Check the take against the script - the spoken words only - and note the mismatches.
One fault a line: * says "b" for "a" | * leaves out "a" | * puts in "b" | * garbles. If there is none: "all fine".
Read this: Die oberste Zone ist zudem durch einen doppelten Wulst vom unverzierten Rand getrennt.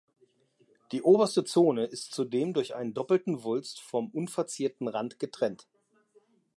all fine